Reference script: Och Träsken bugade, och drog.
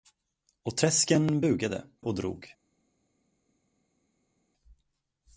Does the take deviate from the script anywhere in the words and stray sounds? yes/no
no